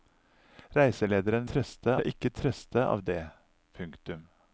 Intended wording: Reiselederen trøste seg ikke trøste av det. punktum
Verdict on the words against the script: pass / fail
pass